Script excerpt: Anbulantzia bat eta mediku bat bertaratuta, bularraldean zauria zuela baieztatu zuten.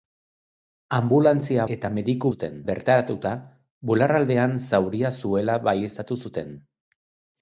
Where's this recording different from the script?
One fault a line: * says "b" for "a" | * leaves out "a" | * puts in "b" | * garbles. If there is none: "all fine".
* leaves out "bat"
* says "zuten" for "bat"